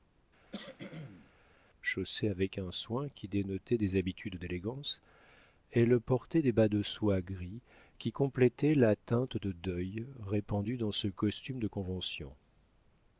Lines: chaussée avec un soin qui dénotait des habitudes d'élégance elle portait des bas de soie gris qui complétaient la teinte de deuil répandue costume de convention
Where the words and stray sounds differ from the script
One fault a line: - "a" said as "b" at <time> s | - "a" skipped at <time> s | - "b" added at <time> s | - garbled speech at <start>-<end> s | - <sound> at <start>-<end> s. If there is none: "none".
- cough at 0.5-1.3 s
- "dans ce" added at 10.8 s